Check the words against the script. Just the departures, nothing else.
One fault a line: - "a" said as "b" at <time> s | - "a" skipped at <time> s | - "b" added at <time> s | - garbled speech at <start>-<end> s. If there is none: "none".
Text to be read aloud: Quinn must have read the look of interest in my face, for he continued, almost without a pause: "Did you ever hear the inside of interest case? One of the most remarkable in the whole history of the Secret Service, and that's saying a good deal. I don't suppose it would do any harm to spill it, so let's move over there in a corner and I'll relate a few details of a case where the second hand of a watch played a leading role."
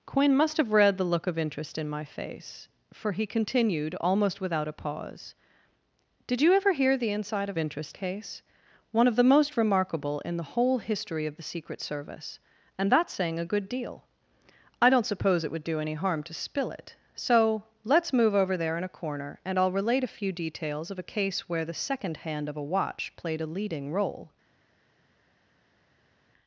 none